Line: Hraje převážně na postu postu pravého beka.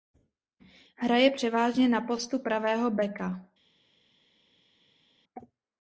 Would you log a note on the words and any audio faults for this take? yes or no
yes